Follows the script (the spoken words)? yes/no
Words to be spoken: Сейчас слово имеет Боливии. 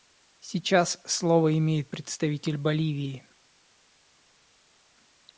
no